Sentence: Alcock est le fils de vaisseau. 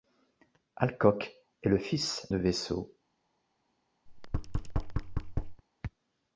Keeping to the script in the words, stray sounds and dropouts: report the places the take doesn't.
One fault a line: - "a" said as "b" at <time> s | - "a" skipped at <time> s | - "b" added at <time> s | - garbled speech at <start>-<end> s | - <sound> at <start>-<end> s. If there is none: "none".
- thud at 4.1-5.6 s